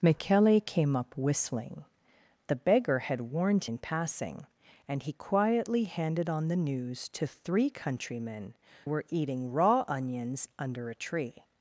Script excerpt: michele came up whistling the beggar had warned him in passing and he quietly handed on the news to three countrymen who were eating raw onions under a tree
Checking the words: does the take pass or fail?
fail